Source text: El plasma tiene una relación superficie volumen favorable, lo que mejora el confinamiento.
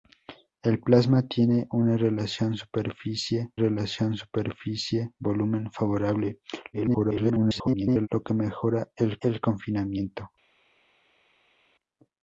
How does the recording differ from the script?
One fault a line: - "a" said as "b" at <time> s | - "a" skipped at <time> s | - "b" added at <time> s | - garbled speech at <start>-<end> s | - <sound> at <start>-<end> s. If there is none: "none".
- "relación superficie" added at 3.5 s
- garbled speech at 6.7-8.1 s
- "el" added at 9.2 s